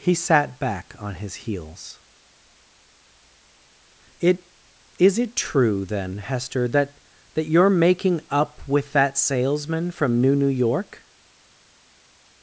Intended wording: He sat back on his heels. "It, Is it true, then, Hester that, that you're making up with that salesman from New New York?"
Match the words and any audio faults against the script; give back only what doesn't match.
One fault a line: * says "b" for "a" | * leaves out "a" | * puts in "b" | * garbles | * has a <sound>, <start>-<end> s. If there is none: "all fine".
all fine